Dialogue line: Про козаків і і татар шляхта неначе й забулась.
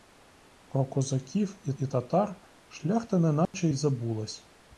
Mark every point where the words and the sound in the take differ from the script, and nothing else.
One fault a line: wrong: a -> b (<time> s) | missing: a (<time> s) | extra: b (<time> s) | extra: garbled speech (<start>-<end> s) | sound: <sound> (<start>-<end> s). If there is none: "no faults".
sound: dropout (3.5-3.5 s)